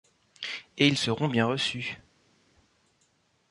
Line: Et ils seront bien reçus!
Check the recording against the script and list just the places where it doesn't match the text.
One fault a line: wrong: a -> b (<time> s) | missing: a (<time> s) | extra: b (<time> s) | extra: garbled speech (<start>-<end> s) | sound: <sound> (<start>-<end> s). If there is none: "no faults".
no faults